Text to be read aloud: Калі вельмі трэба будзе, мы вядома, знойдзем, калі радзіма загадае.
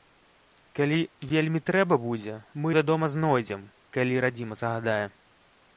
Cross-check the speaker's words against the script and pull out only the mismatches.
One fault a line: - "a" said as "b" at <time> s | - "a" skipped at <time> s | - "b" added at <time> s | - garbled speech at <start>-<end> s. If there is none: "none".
none